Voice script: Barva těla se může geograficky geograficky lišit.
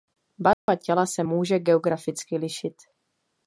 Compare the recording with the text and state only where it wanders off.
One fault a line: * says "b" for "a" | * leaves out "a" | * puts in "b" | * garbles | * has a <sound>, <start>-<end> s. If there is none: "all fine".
* has a dropout, 0.5-0.7 s
* leaves out "geograficky"